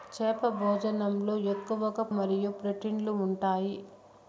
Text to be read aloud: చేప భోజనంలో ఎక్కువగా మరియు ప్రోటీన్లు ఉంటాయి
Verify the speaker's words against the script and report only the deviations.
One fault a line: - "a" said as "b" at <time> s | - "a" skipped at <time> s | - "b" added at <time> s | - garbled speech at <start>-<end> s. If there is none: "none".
none